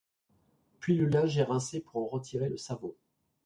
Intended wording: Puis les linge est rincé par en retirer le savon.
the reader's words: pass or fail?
fail